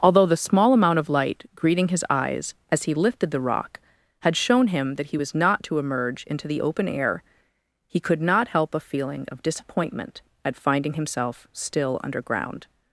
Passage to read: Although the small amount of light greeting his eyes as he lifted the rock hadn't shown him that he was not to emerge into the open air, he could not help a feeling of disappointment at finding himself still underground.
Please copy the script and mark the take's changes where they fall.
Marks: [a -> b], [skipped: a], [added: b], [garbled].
Although the small amount of light greeting his eyes as he lifted the rock [hadn't -> had] shown him that he was not to emerge into the open air, he could not help a feeling of disappointment at finding himself still underground.